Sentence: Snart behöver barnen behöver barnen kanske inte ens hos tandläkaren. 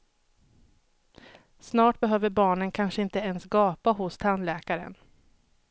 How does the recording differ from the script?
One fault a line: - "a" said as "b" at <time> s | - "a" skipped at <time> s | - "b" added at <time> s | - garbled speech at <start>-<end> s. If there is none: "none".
- "behöver barnen" skipped at 2.7 s
- "gapa" added at 3.4 s